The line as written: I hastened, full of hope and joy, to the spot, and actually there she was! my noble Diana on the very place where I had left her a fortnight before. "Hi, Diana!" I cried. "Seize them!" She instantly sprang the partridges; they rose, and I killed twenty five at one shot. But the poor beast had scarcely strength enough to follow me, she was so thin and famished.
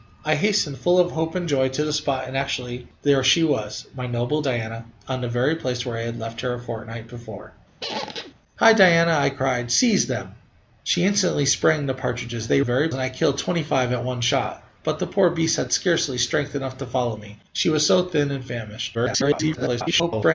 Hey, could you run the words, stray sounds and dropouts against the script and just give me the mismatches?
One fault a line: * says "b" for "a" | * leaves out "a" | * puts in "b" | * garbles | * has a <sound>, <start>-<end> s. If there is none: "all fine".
* has a squeak, 7.8-8.3 s
* says "very" for "rose"
* garbles